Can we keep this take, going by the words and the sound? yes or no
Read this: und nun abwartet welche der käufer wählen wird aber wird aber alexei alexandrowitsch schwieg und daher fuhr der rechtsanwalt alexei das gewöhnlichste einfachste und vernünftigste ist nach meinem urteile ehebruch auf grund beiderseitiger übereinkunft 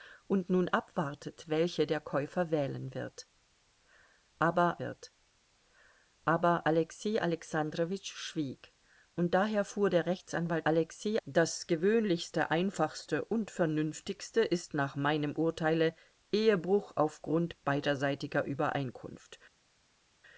yes